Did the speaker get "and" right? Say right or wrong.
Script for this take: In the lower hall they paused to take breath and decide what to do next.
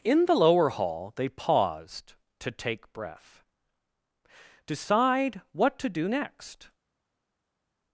wrong